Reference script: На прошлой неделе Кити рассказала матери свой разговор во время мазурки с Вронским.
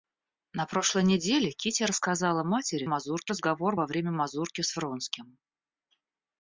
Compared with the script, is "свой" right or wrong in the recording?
wrong